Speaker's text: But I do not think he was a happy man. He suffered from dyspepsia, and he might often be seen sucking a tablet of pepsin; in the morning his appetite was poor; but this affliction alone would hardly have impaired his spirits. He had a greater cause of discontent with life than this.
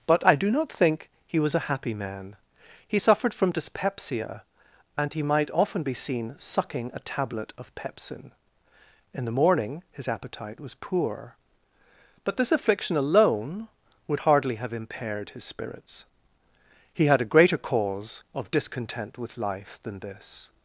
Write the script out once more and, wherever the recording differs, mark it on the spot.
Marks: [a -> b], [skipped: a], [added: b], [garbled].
But I do not think he was a happy man. He suffered from dyspepsia, and he might often be seen sucking a tablet of pepsin; in the morning his appetite was poor; but this affliction alone would hardly have impaired his spirits. He had a greater cause of discontent with life than this.